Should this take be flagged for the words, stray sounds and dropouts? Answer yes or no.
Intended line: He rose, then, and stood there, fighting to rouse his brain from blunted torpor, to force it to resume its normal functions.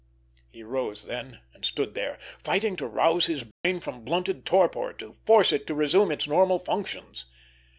yes